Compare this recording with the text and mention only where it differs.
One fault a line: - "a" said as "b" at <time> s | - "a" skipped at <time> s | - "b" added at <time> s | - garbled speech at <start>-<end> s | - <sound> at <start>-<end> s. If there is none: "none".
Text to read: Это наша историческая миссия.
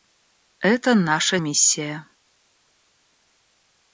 - "историческая" skipped at 1.4 s